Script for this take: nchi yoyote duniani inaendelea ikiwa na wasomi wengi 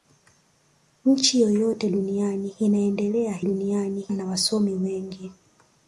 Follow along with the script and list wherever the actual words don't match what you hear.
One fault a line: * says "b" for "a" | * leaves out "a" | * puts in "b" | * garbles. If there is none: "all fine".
* says "duniani" for "ikiwa"